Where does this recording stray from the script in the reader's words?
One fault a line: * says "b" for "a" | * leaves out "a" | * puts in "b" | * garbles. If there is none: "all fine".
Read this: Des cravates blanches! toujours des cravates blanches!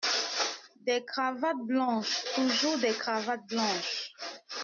all fine